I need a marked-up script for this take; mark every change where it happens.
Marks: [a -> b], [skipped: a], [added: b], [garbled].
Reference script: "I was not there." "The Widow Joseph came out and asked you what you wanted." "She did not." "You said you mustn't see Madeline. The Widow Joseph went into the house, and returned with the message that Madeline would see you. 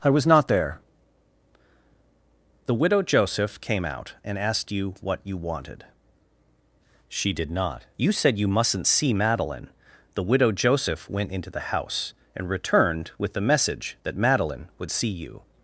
"I was not there." "The Widow Joseph came out and asked you what you wanted." "She did not." "You said you mustn't see Madeline. The Widow Joseph went into the house, and returned with the message that Madeline would see you.